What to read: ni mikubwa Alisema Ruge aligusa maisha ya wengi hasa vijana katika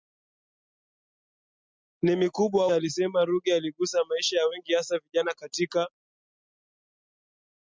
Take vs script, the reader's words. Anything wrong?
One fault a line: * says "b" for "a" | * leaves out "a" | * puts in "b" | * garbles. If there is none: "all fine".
all fine